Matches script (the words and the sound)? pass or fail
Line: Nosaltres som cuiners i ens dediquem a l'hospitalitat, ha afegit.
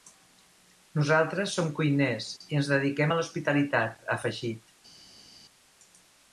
pass